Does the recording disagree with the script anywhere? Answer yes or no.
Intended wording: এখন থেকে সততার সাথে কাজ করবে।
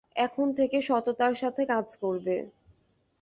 no